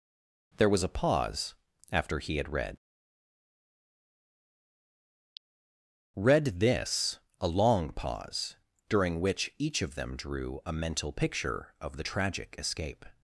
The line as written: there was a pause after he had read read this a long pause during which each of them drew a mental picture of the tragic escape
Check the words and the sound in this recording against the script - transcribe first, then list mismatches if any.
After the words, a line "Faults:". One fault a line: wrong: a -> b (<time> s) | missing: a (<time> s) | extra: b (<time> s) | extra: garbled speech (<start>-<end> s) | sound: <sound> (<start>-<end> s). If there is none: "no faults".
there was a pause after he had read read this a long pause during which each of them drew a mental picture of the tragic escape
Faults:
no faults